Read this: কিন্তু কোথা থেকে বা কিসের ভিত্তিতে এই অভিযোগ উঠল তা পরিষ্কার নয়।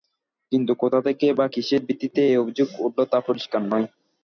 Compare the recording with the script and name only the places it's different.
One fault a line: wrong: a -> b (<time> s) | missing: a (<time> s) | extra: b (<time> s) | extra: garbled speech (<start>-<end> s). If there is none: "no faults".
no faults